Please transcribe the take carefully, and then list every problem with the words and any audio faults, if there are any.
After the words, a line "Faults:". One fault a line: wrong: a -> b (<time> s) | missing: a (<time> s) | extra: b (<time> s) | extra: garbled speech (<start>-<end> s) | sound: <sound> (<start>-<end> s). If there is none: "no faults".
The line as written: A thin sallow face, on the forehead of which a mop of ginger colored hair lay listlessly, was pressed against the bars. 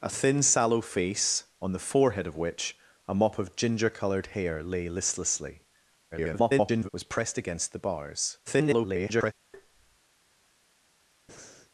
A thin sallow face, on the forehead of which a mop of ginger colored hair lay listlessly, [garbled] was pressed against the bars. [garbled]
Faults:
extra: garbled speech (6.1-6.9 s)
extra: garbled speech (8.5-9.3 s)
sound: tap (9.5-10.0 s)
sound: breath (11.3-11.7 s)